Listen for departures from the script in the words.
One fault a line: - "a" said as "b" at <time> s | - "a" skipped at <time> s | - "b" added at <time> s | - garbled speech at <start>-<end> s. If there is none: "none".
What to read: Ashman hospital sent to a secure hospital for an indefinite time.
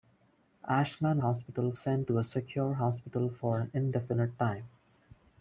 none